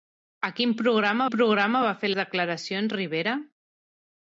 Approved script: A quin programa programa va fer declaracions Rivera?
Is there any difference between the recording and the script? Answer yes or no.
no